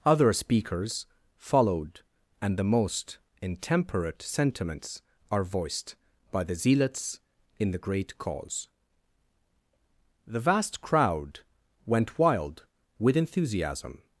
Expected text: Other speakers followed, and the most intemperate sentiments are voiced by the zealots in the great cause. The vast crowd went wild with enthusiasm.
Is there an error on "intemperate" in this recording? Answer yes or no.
no